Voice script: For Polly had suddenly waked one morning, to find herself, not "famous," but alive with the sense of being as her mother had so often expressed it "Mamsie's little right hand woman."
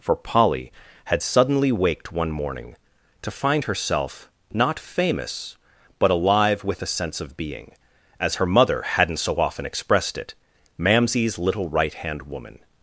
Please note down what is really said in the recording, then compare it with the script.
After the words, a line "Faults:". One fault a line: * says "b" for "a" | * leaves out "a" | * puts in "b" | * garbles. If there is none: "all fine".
For Polly had suddenly waked one morning, to find herself, not "famous," but alive with the sense of being as her mother hadn't so often expressed it "Mamsie's little right hand woman."
Faults:
* says "hadn't" for "had"